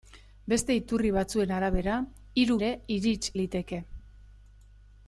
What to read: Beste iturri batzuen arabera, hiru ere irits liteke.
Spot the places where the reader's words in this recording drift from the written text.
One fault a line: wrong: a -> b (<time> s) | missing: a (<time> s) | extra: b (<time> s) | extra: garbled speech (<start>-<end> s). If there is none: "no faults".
no faults